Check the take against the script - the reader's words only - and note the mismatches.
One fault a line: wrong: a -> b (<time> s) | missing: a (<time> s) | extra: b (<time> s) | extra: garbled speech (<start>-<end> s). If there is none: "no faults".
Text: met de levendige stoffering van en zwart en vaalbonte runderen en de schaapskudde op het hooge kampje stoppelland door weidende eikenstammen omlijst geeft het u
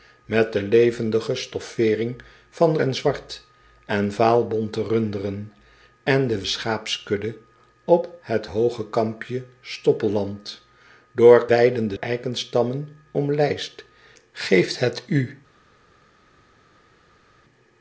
no faults